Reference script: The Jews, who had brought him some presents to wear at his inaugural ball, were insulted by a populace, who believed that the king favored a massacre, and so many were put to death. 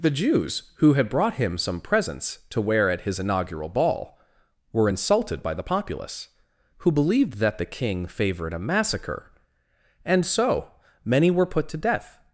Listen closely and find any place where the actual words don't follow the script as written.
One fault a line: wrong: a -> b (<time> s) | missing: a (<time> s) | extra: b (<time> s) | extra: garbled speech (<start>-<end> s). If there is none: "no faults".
wrong: a -> the (5.5 s)